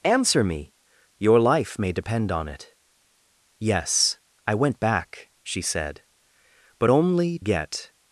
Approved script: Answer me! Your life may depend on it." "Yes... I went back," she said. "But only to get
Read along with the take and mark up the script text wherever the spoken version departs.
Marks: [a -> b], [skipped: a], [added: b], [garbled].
Answer me! Your life may depend on it." "Yes... I went back," she said. "But only [skipped: to] get